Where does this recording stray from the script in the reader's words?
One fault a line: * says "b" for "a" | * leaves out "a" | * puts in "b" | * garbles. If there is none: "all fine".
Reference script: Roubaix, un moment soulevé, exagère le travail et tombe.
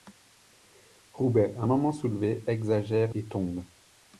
* leaves out "le travail"